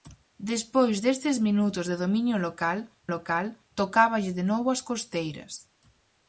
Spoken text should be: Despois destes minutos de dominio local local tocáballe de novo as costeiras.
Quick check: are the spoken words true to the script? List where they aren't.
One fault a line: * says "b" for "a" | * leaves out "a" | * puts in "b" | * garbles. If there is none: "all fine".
all fine